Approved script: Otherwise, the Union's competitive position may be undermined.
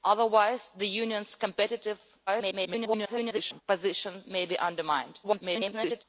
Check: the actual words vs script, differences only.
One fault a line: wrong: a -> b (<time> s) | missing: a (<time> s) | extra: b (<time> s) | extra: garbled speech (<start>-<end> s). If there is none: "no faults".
extra: garbled speech (2.3-3.6 s)
extra: garbled speech (5.2-6.0 s)